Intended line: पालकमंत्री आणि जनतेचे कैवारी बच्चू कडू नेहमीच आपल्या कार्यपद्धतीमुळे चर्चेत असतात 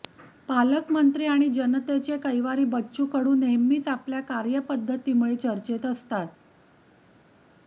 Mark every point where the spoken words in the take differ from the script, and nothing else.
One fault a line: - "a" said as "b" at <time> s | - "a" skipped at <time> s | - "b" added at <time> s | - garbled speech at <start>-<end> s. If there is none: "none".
none